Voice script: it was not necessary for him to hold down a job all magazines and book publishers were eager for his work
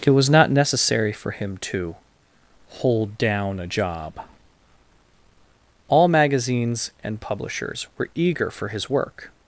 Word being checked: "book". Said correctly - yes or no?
no